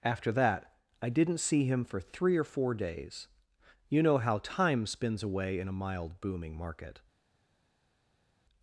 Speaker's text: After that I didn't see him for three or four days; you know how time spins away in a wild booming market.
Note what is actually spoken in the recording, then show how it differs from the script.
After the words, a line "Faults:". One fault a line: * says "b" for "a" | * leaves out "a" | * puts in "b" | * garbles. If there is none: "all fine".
After that I didn't see him for three or four days; you know how time spins away in a mild booming market.
Faults:
* says "mild" for "wild"